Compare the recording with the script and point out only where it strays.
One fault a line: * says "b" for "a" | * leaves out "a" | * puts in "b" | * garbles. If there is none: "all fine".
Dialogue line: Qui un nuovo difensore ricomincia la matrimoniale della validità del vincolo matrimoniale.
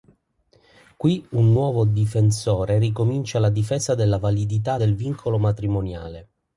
* says "difesa" for "matrimoniale"